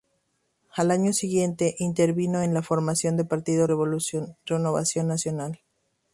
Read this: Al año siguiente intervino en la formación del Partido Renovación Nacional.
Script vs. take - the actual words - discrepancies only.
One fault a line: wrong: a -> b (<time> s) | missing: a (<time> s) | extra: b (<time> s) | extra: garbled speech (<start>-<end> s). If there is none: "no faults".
no faults